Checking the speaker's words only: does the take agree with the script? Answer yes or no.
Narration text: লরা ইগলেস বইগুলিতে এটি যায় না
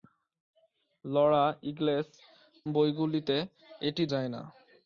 yes